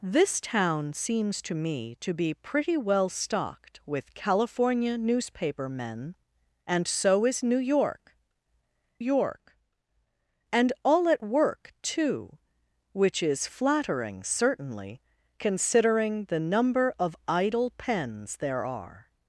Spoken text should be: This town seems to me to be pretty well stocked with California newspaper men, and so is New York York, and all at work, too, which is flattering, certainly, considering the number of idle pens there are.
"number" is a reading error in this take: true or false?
false